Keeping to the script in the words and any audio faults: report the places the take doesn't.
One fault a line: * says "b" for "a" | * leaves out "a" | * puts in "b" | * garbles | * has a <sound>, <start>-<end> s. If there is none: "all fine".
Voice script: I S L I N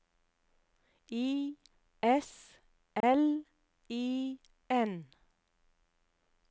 * has a dropout, 3.0-3.0 s